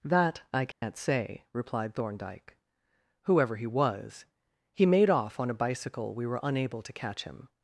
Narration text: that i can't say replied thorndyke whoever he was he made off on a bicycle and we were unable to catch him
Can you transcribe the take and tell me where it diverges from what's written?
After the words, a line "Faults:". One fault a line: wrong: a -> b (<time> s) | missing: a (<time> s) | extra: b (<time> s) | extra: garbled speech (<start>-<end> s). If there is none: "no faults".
that i can't say replied thorndyke whoever he was he made off on a bicycle we were unable to catch him
Faults:
missing: and (6.2 s)